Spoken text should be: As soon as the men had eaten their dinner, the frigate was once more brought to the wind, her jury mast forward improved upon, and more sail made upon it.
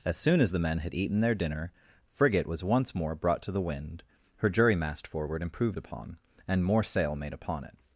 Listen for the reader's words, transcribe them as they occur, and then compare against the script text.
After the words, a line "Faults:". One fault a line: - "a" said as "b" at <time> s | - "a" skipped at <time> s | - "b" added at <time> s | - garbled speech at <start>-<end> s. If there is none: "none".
As soon as the men had eaten their dinner, frigate was once more brought to the wind, her jury mast forward improved upon, and more sail made upon it.
Faults:
- "the" skipped at 1.7 s